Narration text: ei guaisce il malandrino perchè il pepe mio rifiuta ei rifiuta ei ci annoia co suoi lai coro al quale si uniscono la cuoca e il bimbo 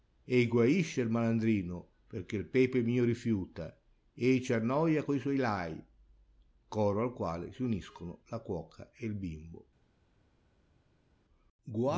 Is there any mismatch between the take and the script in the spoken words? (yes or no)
yes